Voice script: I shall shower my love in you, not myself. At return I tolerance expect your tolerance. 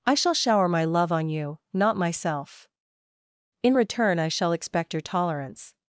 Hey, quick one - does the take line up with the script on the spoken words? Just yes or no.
no